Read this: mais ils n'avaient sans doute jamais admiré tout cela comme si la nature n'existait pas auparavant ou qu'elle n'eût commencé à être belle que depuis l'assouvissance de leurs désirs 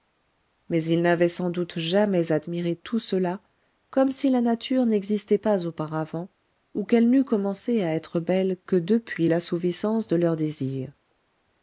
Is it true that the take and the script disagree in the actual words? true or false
false